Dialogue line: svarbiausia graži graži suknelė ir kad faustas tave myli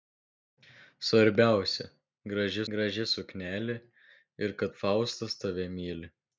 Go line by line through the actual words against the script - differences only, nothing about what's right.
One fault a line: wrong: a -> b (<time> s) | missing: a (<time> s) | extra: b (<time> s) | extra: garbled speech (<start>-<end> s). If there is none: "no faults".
no faults